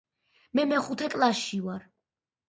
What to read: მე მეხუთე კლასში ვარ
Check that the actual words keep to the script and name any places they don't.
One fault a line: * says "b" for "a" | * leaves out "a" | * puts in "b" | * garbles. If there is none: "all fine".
all fine